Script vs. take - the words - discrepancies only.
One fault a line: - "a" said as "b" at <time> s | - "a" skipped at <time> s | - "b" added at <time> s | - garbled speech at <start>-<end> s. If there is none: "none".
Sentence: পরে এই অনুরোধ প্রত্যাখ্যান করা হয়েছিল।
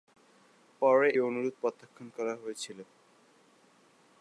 - "এই" skipped at 1.1 s